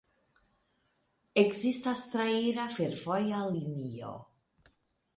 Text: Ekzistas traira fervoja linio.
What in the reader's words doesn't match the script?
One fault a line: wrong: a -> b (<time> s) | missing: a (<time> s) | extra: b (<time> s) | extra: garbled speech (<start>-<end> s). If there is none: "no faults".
no faults